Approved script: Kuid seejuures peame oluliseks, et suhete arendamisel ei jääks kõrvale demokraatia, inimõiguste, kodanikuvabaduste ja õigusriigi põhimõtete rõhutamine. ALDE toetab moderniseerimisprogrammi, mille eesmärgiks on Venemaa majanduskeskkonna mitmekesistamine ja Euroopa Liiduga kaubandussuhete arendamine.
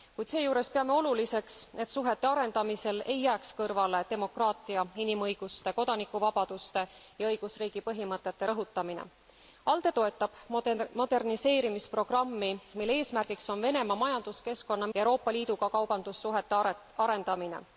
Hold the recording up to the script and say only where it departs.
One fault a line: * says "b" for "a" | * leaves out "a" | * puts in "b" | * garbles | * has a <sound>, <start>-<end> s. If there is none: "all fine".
* leaves out "mitmekesistamine"